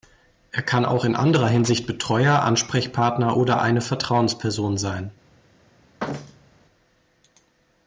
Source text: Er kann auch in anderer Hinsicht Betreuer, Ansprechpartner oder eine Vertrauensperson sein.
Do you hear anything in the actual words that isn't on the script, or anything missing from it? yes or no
no